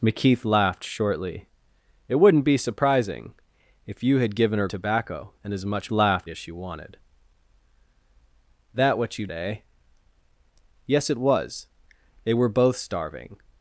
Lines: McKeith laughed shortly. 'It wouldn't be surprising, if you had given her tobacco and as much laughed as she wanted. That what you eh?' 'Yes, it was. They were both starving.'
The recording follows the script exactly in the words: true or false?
true